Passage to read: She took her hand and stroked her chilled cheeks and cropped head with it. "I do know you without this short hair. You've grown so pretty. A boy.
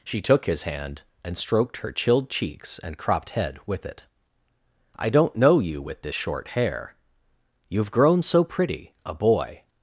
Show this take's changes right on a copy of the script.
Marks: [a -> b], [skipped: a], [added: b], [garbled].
She took [her -> his] hand and stroked her chilled cheeks and cropped head with it. "I [do -> don't] know you [without -> with] this short hair. You've grown so pretty. A boy.